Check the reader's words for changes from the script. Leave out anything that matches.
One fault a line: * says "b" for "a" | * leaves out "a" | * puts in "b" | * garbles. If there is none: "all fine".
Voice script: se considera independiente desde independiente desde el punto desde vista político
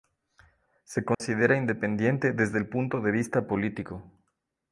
* leaves out "independiente desde"
* says "de" for "desde"